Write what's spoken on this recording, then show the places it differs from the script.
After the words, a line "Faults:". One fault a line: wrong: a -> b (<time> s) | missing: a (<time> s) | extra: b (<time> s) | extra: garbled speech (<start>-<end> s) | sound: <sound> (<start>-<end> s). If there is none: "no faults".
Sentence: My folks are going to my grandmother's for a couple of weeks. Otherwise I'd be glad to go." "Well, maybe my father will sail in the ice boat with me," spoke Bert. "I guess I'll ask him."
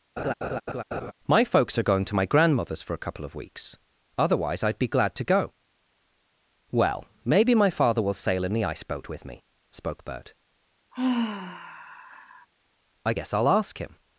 My folks are going to my grandmother's for a couple of weeks. Otherwise I'd be glad to go." "Well, maybe my father will sail in the ice boat with me," spoke Bert. "I guess I'll ask him."
Faults:
sound: laugh (0.2-1.1 s)
sound: sigh (10.9-12.5 s)